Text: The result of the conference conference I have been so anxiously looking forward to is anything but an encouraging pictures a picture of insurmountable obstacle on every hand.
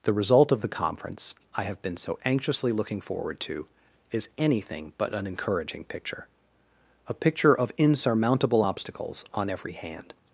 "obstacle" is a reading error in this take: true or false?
true